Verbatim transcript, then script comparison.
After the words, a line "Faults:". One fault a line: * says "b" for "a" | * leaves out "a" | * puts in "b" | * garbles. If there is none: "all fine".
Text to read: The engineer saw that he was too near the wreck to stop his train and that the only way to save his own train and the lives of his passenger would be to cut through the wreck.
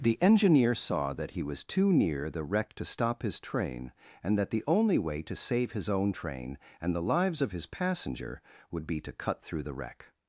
The engineer saw that he was too near the wreck to stop his train and that the only way to save his own train and the lives of his passenger would be to cut through the wreck.
Faults:
all fine